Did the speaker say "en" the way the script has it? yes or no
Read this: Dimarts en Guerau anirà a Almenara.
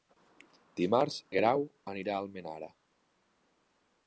no